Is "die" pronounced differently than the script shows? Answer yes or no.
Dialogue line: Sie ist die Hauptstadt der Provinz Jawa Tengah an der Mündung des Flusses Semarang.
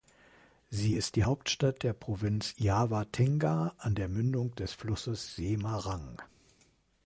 no